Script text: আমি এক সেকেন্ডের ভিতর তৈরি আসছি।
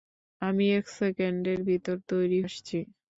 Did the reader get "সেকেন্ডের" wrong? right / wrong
right